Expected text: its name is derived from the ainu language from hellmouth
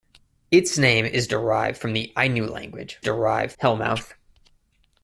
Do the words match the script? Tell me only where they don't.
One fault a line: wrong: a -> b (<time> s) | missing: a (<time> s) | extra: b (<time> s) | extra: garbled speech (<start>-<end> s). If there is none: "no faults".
wrong: from -> derived (3.0 s)